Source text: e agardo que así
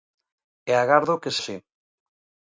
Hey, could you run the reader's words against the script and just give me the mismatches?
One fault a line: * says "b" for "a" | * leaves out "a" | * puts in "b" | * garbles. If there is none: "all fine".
all fine